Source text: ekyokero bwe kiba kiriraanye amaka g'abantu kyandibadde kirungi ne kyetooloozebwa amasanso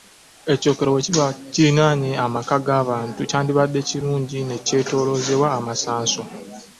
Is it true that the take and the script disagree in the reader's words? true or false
false